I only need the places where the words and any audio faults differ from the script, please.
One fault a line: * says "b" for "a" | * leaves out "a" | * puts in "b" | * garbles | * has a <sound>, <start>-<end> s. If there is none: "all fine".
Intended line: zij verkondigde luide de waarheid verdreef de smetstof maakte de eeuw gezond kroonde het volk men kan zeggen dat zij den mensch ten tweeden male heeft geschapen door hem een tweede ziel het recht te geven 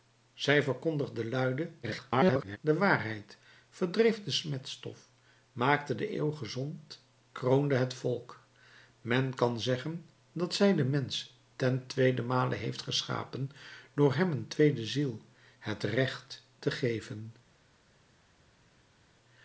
* garbles